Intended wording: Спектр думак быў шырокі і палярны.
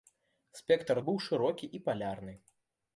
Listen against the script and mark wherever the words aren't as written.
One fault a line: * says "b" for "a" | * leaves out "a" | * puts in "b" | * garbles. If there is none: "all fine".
* leaves out "думак"